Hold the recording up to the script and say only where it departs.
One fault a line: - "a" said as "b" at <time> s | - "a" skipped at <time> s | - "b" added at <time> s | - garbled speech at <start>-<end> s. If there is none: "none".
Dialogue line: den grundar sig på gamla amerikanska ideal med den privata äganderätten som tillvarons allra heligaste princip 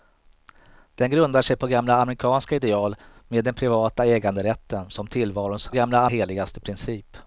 - "allra" said as "gamla" at 5.7 s